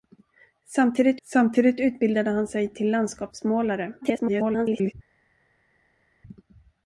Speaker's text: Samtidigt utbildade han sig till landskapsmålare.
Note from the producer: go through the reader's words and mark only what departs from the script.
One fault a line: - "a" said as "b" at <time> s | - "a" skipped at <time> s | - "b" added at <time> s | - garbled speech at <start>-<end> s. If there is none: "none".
- "samtidigt" added at 1.2 s
- garbled speech at 4.0-4.9 s